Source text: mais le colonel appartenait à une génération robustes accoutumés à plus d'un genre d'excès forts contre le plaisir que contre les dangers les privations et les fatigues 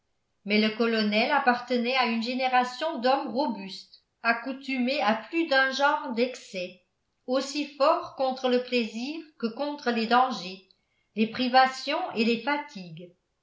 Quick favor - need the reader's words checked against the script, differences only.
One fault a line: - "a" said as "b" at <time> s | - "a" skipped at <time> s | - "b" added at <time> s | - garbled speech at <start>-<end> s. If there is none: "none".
- "d'hommes" added at 3.0 s
- "aussi" added at 7.3 s